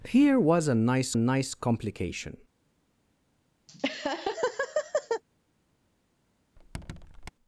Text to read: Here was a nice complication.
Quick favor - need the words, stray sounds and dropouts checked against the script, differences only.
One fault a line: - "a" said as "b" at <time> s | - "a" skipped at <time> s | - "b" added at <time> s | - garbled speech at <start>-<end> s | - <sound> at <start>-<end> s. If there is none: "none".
- "nice" added at 1.1 s
- laugh at 3.7-5.2 s
- squeak at 6.6-7.3 s